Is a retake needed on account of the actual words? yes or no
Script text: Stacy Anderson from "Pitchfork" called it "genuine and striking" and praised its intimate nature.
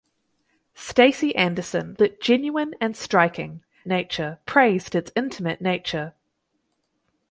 yes